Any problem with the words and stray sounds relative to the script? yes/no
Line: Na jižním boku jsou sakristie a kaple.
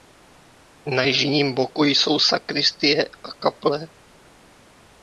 no